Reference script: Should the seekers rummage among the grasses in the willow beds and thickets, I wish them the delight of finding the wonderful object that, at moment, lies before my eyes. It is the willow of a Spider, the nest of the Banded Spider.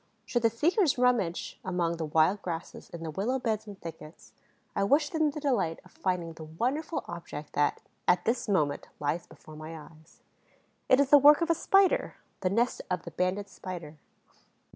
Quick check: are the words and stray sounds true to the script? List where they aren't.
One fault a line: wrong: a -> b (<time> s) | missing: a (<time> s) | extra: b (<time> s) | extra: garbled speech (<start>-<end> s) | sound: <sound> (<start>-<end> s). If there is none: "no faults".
extra: wild (2.0 s)
extra: this (8.2 s)
wrong: willow -> work (11.2 s)